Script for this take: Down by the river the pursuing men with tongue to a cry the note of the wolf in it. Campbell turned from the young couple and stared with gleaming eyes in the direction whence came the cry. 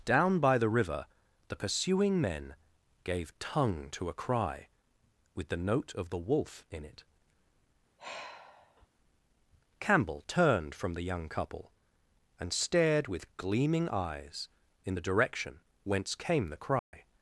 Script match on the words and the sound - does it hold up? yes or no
no